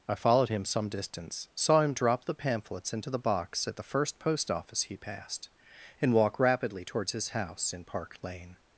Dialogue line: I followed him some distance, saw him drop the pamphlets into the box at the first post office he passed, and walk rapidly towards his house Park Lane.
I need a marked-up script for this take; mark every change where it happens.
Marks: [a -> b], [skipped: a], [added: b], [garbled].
I followed him some distance, saw him drop the pamphlets into the box at the first post office he passed, and walk rapidly towards his house [added: in] Park Lane.